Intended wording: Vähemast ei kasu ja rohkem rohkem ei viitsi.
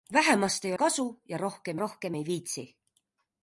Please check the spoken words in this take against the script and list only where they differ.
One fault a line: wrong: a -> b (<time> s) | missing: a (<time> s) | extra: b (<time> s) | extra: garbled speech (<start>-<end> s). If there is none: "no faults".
no faults